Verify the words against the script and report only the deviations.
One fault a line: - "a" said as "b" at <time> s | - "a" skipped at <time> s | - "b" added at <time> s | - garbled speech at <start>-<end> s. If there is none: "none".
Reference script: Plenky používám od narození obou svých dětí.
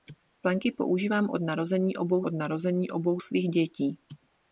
- "od narození obou" added at 2.2 s